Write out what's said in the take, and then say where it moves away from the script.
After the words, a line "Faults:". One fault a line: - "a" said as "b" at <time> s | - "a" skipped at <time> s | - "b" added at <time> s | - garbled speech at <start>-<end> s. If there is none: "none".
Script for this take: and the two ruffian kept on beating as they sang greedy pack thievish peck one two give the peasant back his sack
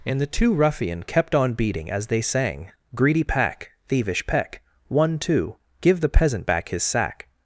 and the two ruffian kept on beating as they sang greedy pack thievish peck one two give the peasant back his sack
Faults:
none